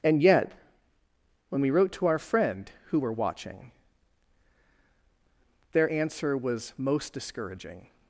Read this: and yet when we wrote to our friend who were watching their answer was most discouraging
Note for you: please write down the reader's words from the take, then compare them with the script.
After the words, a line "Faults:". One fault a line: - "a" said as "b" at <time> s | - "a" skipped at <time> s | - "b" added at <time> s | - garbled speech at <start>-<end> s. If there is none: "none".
and yet when we wrote to our friend who were watching their answer was most discouraging
Faults:
none